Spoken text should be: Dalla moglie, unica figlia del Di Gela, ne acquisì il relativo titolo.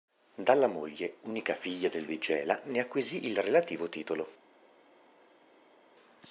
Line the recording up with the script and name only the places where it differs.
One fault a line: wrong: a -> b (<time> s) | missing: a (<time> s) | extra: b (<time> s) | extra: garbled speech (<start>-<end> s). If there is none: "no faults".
no faults